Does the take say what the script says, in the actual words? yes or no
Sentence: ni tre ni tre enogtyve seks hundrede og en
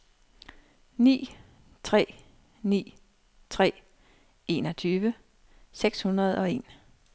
yes